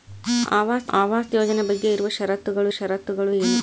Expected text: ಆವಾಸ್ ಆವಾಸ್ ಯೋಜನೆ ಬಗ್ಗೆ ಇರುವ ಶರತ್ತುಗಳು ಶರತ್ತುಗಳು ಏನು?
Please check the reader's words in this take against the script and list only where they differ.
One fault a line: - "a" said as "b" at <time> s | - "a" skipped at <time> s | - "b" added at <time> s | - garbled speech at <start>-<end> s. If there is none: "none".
none